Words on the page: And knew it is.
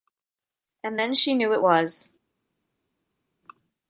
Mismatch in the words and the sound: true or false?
true